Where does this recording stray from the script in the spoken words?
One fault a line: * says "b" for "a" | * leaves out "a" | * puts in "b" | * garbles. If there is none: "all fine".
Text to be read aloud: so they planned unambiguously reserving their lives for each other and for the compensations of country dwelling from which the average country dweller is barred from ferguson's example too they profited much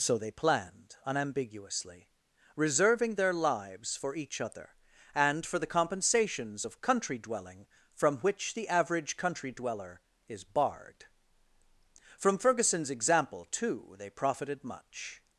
all fine